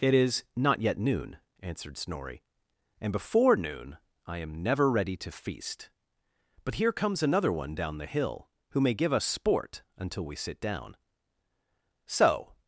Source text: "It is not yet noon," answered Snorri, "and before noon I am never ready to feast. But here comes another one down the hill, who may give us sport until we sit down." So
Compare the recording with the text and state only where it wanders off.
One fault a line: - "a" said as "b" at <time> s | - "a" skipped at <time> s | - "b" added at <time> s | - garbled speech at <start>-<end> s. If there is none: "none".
none